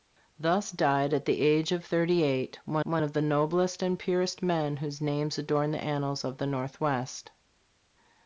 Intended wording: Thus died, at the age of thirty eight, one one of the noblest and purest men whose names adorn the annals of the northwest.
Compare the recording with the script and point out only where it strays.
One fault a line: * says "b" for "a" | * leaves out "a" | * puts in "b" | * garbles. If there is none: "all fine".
all fine